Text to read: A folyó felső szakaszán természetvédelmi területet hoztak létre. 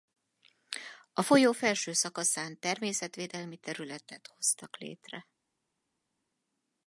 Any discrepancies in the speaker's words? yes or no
no